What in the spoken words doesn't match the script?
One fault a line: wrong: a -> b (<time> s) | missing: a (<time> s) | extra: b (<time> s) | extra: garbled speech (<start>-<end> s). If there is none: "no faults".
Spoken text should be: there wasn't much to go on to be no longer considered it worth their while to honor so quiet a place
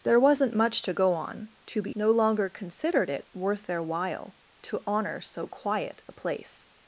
no faults